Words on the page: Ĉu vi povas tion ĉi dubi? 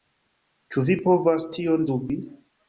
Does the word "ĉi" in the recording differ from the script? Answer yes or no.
yes